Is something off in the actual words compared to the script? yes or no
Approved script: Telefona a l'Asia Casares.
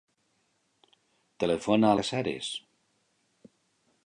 yes